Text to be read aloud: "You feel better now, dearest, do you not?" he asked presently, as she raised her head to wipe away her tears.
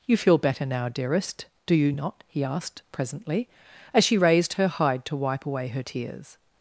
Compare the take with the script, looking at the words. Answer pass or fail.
fail